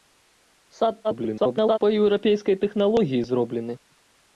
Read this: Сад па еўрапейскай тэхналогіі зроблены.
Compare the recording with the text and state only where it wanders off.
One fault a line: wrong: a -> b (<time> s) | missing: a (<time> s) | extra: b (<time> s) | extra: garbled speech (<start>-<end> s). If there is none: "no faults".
extra: garbled speech (1.0-1.8 s)